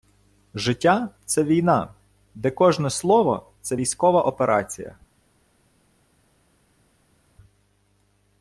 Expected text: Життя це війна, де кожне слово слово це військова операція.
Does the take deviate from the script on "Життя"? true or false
false